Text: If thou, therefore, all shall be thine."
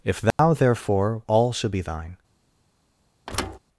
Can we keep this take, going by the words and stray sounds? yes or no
no